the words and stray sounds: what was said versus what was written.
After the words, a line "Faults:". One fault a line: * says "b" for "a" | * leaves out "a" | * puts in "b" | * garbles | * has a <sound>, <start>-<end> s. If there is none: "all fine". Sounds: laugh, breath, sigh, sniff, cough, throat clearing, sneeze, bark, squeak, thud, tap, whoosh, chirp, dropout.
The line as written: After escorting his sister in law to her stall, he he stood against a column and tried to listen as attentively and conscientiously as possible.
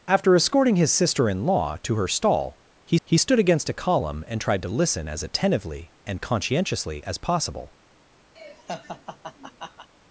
After escorting his sister in law to her stall, he he stood against a column and tried to listen as attentively and conscientiously as possible.
Faults:
* has a laugh, 8.4-9.9 s